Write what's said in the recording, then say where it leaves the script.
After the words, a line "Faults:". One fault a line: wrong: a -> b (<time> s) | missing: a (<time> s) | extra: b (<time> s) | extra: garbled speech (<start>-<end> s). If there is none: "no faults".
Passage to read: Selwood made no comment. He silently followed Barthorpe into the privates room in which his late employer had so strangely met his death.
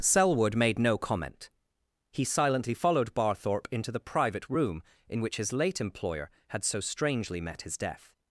Selwood made no comment. He silently followed Barthorpe into the private room in which his late employer had so strangely met his death.
Faults:
wrong: privates -> private (4.0 s)